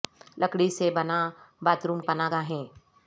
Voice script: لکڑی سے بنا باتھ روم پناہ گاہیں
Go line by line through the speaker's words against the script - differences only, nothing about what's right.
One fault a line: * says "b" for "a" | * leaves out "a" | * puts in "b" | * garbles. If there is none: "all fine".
all fine